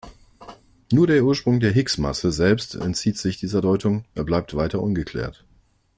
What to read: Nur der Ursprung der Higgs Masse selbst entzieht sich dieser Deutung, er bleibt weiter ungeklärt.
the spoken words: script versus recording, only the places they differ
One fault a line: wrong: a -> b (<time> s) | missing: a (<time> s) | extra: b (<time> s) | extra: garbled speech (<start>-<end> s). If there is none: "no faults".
no faults